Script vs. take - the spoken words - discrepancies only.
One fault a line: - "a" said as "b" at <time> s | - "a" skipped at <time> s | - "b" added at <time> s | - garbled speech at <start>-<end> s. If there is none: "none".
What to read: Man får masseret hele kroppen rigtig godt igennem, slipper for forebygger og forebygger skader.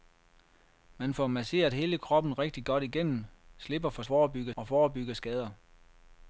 none